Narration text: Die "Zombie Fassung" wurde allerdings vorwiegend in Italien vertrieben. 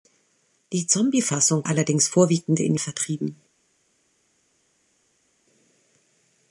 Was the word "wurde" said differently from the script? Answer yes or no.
yes